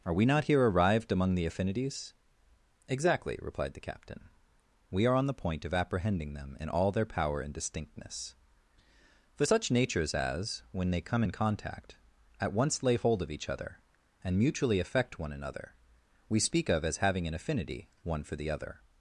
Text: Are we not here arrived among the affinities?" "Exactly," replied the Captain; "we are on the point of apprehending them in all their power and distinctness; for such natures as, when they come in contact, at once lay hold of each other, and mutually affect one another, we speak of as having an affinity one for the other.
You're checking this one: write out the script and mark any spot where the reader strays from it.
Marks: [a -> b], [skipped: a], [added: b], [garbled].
Are we not here arrived among the affinities?" "Exactly," replied the Captain; "we are on the point of apprehending them in all their power and distinctness; for such natures as, when they come in contact, at once lay hold of each other, and mutually affect one another, we speak of as having an affinity one for the other.